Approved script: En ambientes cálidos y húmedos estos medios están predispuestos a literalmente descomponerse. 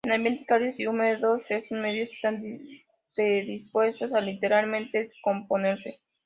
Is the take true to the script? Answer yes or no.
yes